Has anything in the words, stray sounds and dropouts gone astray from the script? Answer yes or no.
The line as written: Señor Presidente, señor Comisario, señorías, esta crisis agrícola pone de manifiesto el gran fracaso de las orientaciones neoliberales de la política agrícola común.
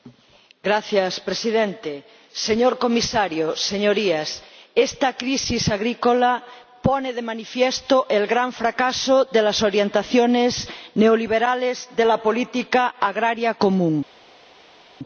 no